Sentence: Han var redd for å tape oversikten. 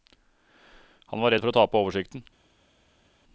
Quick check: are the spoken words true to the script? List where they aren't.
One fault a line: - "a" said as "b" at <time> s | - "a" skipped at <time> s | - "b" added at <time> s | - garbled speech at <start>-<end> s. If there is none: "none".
none